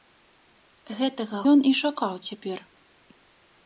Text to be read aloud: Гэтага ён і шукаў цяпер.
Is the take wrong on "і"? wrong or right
right